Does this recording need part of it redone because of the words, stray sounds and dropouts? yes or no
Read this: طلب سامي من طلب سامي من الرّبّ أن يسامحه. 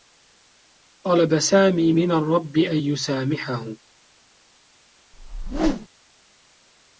yes